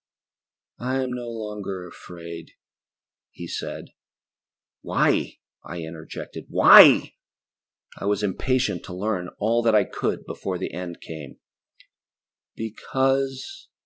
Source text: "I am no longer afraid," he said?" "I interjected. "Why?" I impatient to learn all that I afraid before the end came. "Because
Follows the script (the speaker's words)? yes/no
no